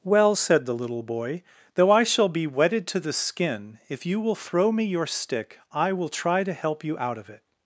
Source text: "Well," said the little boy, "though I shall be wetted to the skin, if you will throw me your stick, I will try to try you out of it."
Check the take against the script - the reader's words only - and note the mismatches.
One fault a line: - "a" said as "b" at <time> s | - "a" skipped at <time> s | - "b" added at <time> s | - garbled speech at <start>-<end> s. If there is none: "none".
- "try" said as "help" at 6.5 s